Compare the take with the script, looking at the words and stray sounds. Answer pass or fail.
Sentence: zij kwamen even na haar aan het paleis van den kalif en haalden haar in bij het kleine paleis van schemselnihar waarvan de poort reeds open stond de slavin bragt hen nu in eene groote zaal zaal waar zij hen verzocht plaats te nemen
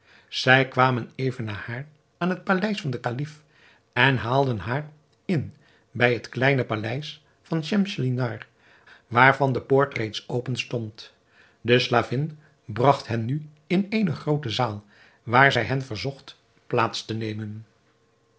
fail